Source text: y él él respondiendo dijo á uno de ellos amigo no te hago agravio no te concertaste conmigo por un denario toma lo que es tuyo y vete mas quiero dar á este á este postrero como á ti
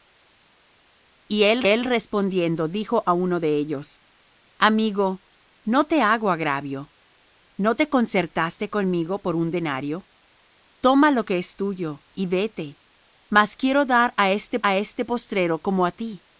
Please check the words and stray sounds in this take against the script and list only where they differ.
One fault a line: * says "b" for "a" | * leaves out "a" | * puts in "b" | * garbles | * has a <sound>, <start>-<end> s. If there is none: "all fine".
all fine